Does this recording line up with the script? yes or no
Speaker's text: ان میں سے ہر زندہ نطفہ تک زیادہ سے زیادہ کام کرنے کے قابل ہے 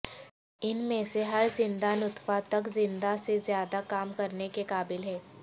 yes